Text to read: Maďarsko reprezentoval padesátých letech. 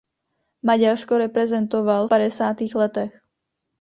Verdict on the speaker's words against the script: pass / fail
pass